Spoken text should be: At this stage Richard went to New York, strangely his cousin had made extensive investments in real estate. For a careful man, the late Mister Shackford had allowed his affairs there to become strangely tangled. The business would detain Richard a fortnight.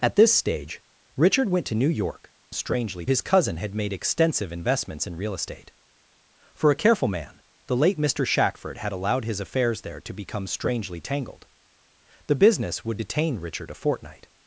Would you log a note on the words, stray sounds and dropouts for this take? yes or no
no